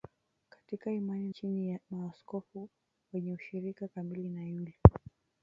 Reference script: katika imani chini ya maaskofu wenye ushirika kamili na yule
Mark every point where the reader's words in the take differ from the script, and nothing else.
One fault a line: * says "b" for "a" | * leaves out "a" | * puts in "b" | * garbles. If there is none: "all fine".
all fine